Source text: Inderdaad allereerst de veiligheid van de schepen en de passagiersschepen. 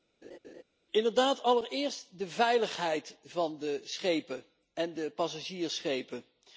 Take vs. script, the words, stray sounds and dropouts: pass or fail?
fail